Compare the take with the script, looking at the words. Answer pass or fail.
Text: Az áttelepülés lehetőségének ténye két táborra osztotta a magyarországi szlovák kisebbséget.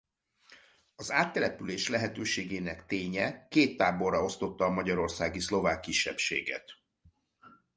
pass